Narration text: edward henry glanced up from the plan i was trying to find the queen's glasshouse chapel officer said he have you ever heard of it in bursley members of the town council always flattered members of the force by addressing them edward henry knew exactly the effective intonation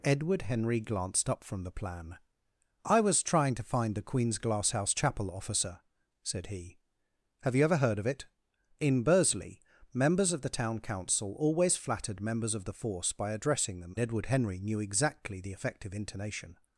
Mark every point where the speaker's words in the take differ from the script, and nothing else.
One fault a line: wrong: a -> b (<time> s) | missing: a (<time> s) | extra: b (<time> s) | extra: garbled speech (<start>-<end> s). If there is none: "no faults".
no faults